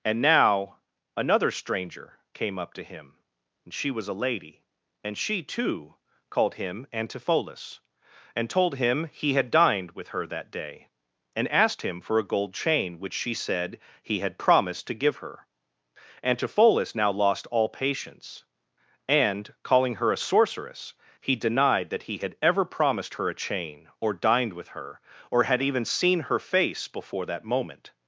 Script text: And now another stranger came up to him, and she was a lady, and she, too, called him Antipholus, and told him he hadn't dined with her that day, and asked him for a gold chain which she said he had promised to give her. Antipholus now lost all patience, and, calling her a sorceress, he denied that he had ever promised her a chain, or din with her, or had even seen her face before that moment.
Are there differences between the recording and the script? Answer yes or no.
yes